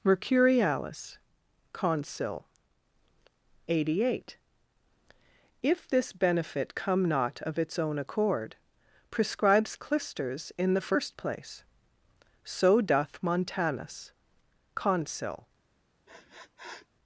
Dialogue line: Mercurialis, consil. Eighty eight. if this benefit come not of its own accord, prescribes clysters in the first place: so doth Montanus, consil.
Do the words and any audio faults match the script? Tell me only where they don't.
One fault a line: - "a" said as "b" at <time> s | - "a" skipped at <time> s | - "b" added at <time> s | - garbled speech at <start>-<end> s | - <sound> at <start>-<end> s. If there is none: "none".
- sniff at 16.1-16.9 s